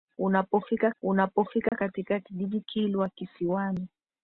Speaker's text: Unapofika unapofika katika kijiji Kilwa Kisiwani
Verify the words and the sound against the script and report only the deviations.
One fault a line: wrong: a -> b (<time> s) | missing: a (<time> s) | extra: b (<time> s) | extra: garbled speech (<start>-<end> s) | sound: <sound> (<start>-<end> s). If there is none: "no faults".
sound: dropout (1.7-1.7 s)